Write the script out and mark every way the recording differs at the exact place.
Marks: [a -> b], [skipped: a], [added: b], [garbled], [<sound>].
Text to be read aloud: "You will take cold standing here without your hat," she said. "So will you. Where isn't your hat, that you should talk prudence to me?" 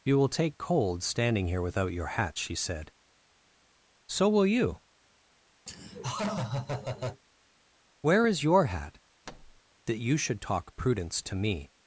"You will take cold standing here without your hat," she said. "So will you. [laugh] Where [isn't -> is] your hat, [thud] that you should talk prudence to me?"